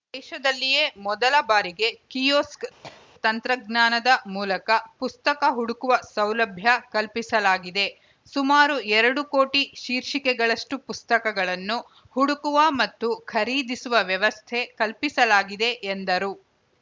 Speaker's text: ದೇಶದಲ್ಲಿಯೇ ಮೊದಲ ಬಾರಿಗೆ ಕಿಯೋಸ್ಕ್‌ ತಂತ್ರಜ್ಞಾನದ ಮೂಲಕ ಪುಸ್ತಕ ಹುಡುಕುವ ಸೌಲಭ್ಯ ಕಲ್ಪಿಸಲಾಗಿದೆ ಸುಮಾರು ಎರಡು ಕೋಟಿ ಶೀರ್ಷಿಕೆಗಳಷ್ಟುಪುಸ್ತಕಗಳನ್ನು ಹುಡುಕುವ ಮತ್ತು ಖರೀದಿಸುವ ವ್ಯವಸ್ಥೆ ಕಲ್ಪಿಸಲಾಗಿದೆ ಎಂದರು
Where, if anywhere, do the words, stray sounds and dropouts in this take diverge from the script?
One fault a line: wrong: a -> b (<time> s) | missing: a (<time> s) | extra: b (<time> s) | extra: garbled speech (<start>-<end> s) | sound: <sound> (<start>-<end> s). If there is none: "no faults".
sound: cough (2.8-3.1 s)